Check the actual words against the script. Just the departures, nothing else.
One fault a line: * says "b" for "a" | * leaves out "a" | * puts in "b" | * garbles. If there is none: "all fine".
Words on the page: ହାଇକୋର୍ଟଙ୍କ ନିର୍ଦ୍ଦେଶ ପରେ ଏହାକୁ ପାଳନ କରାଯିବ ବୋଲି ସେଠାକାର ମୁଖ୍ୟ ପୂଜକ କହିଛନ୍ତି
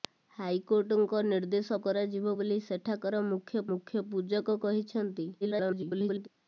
* leaves out "ପରେ ଏହାକୁ ପାଳନ"
* puts in "ମୁଖ୍ୟ"
* garbles